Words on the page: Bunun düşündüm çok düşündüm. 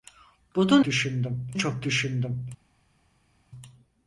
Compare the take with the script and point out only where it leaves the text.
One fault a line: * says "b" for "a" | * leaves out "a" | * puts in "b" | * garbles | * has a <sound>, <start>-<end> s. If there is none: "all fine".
all fine